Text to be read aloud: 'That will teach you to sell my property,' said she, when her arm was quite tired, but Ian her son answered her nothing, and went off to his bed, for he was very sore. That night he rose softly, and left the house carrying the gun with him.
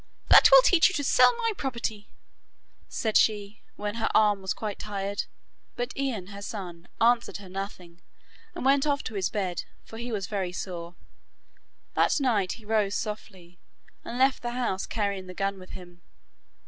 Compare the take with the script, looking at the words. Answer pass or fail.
pass